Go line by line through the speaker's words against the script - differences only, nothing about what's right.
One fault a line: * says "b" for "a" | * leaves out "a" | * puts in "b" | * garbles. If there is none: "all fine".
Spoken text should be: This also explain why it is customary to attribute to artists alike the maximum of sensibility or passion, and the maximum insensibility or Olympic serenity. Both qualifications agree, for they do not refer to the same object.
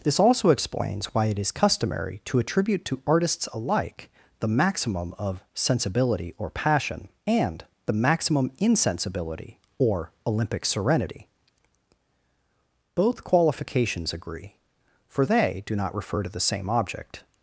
* says "explains" for "explain"